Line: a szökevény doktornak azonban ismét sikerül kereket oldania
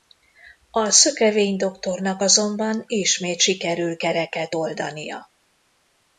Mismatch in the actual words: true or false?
false